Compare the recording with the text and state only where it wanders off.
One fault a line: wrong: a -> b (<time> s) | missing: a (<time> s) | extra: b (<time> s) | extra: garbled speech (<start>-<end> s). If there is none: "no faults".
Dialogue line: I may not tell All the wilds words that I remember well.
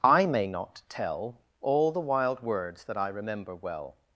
wrong: wilds -> wild (2.0 s)